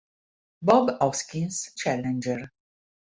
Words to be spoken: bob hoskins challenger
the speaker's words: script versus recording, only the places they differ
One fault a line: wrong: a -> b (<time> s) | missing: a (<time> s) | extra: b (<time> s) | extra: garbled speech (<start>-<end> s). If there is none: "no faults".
no faults